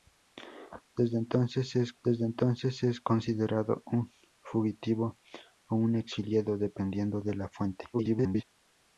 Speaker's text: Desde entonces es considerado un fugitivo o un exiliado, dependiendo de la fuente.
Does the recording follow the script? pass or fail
fail